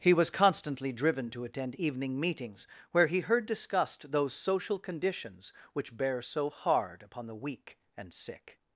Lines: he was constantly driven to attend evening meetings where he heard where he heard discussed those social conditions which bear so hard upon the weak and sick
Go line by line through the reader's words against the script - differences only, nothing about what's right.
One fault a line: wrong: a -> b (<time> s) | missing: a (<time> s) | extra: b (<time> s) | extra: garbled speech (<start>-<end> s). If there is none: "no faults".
missing: where he heard (3.5 s)